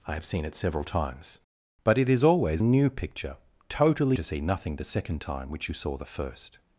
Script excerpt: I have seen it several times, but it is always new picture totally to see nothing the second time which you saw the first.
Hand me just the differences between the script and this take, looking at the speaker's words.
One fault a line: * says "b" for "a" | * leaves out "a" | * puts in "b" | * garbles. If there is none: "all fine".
all fine